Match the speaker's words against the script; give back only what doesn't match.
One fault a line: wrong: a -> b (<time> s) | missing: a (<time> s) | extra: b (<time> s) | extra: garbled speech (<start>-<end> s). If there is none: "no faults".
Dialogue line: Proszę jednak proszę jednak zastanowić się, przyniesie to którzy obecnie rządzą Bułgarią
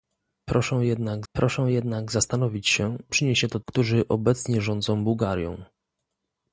no faults